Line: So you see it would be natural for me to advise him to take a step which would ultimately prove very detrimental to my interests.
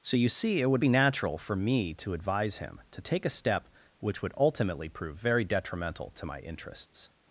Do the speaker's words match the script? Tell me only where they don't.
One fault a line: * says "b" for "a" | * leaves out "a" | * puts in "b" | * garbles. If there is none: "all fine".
all fine